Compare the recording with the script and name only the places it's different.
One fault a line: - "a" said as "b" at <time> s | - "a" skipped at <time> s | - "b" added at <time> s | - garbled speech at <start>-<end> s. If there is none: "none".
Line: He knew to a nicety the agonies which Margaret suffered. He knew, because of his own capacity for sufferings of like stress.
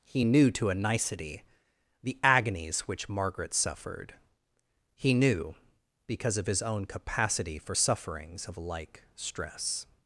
none